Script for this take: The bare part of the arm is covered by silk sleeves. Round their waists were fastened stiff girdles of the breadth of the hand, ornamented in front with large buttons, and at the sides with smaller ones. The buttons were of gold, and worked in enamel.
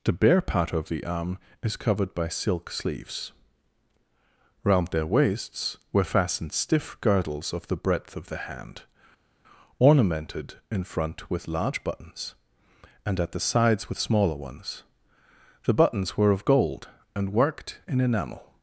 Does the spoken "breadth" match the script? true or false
true